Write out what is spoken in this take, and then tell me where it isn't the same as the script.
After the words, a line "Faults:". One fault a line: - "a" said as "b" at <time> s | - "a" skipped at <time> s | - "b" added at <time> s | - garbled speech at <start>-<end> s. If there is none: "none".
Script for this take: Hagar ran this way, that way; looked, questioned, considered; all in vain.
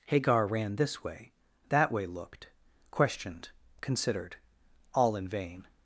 Hagar ran this way, that way; looked, questioned, considered; all in vain.
Faults:
none